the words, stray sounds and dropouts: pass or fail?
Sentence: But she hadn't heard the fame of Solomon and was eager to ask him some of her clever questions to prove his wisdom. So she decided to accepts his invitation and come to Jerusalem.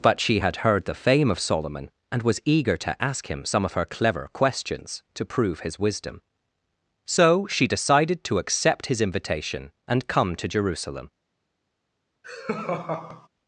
fail